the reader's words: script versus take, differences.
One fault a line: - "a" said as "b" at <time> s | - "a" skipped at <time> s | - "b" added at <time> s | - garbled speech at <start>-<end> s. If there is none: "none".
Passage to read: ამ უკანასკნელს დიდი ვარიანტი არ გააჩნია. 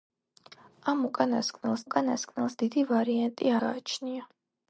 - "უკანასკნელს" added at 1.9 s
- "არ" skipped at 3.5 s